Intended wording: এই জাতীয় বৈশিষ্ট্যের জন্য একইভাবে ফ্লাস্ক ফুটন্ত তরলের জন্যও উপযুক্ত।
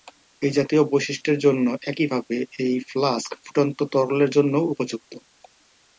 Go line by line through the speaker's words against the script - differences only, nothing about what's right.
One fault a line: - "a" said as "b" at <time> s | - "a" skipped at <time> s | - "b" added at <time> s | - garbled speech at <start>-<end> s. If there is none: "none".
- "এই" added at 2.6 s